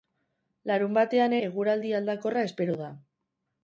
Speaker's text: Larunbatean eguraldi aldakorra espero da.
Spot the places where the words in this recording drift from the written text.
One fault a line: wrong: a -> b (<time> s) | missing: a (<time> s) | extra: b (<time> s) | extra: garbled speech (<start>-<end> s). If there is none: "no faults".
no faults